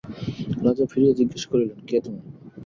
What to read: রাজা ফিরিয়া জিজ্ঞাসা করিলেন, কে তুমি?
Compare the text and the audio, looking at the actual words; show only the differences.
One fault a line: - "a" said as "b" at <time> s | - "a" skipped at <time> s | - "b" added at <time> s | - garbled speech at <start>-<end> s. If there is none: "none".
none